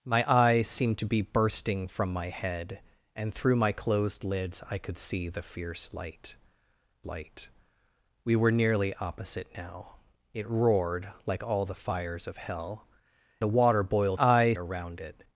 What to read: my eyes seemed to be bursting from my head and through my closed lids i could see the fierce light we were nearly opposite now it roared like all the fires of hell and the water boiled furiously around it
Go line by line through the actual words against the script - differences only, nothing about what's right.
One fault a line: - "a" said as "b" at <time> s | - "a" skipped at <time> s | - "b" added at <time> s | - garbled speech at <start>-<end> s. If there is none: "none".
- "light" added at 7.0 s
- "and" skipped at 12.9 s
- "furiously" said as "eyes" at 14.2 s